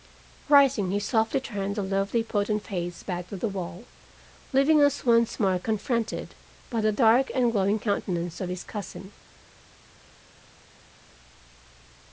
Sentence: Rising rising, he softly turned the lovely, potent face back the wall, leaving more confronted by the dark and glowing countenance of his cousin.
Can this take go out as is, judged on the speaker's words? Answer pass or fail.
fail